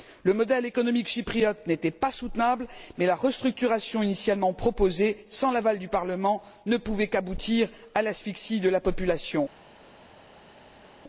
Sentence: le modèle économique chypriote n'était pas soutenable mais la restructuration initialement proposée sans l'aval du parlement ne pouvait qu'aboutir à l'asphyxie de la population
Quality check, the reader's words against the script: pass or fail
pass